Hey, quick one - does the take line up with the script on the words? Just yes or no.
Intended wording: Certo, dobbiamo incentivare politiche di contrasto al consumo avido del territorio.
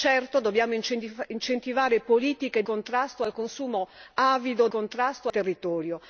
no